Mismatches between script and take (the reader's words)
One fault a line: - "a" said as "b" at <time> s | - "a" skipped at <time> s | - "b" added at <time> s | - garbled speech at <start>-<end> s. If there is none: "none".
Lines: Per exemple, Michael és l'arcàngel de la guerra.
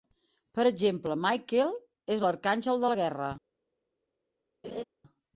none